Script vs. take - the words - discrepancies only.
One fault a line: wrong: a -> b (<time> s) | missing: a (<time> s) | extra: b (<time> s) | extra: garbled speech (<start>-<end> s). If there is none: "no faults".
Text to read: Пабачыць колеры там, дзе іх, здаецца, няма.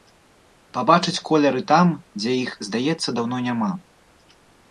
extra: даўно (3.2 s)